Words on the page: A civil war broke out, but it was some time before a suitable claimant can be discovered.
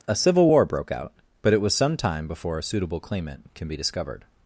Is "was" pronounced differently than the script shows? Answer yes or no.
no